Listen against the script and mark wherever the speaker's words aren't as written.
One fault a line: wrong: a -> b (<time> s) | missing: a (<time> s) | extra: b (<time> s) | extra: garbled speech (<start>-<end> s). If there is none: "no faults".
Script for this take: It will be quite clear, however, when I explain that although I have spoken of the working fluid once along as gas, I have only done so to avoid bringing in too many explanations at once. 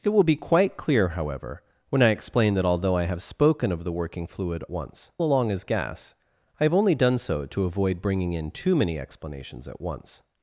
no faults